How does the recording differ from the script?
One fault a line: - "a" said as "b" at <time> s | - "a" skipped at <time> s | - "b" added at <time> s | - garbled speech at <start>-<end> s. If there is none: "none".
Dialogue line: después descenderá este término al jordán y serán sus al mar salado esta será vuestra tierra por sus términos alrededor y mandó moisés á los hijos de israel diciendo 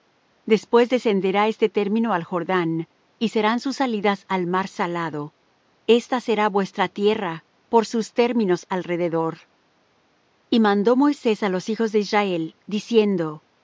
- "salidas" added at 3.8 s